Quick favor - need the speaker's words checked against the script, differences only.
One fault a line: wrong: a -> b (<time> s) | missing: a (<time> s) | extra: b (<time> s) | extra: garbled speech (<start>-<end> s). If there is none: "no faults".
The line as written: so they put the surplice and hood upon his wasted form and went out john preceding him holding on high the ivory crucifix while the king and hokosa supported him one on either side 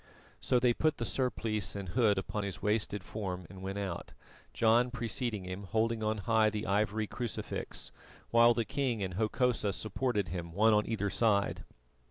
no faults